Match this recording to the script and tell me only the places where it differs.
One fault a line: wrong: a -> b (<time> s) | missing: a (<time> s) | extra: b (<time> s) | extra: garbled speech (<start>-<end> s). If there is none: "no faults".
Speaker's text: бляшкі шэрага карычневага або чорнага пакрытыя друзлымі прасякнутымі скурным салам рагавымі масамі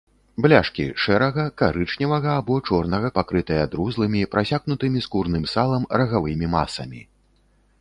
no faults